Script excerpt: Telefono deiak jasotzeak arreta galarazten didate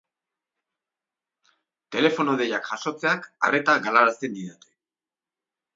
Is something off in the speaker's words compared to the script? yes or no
no